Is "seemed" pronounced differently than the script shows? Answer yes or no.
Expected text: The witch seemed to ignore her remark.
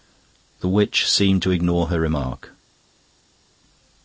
no